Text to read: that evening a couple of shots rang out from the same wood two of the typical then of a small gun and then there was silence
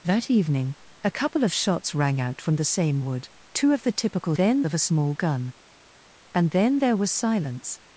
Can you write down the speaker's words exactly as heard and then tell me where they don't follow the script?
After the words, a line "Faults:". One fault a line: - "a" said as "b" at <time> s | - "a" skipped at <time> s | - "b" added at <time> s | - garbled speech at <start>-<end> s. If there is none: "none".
that evening a couple of shots rang out from the same wood two of the typical then of a small gun and then there was silence
Faults:
none